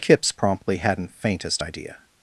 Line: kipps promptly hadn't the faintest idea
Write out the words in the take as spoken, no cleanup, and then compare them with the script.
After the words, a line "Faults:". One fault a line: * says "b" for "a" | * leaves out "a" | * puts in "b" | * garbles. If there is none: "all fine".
kipps promptly hadn't faintest idea
Faults:
* leaves out "the"